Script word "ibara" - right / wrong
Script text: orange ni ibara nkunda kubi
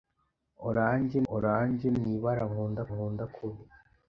right